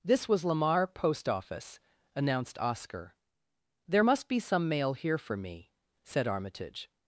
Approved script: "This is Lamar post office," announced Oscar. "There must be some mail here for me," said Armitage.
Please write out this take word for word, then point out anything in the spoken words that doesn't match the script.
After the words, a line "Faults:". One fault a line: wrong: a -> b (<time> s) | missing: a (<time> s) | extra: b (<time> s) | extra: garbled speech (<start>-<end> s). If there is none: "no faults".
"This was Lamar post office," announced Oscar. "There must be some mail here for me," said Armitage.
Faults:
wrong: is -> was (0.3 s)